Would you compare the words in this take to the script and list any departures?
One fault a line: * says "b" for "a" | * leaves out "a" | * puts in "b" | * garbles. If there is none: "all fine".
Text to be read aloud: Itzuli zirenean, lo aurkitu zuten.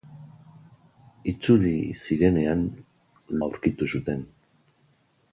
* leaves out "lo"